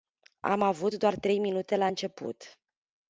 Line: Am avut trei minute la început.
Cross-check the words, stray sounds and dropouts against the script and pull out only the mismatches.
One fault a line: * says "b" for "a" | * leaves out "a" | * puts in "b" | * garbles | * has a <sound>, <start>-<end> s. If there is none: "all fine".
* puts in "doar"